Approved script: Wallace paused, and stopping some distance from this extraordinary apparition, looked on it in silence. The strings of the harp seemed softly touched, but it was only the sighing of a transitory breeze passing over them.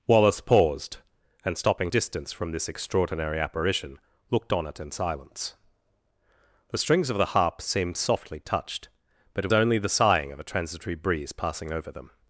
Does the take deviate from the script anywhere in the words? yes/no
yes